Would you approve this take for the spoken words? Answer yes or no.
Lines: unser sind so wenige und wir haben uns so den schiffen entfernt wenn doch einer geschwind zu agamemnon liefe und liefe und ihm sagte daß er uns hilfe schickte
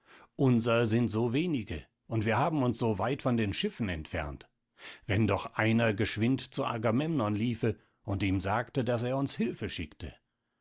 no